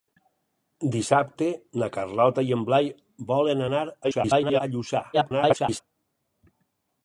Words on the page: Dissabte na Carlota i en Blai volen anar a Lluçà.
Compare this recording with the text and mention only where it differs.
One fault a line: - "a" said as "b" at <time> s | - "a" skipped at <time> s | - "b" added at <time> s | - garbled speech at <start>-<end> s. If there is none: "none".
- garbled speech at 4.0-4.6 s
- garbled speech at 5.1-5.8 s